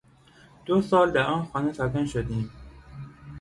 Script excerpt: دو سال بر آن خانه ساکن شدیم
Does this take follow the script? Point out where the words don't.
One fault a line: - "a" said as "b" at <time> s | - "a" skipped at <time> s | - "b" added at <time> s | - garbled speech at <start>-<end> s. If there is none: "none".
- "بر" said as "در" at 1.1 s